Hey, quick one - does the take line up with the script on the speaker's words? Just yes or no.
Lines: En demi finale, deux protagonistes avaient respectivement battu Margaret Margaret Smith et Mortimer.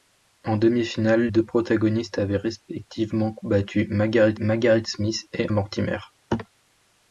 yes